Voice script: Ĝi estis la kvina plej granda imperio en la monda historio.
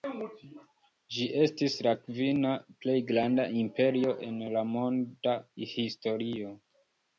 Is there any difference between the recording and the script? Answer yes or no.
no